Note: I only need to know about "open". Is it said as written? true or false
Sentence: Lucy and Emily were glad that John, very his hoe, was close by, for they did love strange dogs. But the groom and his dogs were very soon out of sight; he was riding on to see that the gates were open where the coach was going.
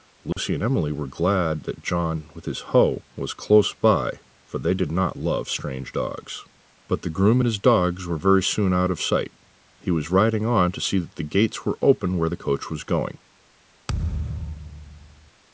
true